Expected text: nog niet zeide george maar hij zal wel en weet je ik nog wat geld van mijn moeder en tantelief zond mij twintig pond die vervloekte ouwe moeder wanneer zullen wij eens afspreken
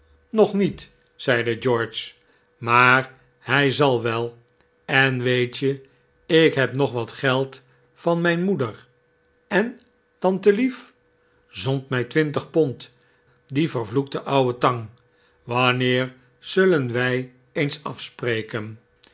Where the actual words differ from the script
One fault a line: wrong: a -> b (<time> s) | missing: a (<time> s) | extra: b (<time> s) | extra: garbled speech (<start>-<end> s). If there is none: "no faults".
extra: heb (6.5 s)
wrong: moeder -> tang (14.6 s)